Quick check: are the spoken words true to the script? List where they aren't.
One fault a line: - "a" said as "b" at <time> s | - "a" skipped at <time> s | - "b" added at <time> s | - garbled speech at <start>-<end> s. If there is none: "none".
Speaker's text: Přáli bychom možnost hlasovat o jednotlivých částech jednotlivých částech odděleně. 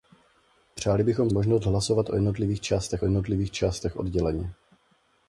none